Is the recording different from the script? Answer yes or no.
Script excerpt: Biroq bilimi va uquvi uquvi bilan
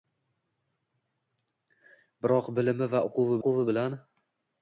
no